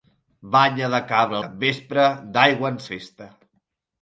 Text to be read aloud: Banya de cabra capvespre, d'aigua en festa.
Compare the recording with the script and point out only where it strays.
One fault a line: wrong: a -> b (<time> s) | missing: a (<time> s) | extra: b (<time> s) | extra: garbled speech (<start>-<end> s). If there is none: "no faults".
no faults